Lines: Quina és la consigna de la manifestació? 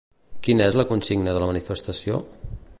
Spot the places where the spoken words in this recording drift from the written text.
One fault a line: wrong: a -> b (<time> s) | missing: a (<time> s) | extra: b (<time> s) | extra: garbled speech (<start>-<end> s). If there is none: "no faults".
no faults